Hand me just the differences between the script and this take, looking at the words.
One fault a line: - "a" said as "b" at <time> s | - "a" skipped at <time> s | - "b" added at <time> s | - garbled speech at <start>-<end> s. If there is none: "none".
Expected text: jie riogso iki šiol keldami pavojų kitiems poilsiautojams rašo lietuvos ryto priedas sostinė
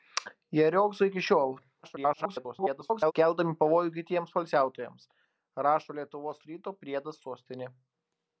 - garbled speech at 1.8-3.1 s